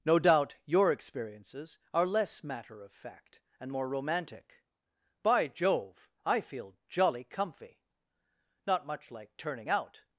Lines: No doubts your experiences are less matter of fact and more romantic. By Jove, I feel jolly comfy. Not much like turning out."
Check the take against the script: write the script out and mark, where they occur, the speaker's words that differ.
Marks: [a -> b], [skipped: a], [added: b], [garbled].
No [doubts -> doubt] your experiences are less matter of fact and more romantic. By Jove, I feel jolly comfy. Not much like turning out."